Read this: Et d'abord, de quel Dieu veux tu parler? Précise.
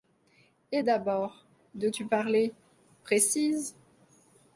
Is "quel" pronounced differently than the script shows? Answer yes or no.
yes